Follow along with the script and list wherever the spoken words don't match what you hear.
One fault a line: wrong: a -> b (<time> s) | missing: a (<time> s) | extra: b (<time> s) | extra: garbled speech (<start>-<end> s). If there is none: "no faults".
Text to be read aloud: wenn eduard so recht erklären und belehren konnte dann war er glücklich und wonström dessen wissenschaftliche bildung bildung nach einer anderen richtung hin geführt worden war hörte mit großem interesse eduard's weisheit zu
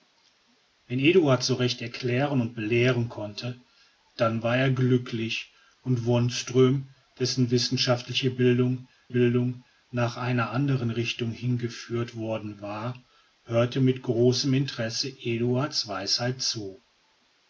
no faults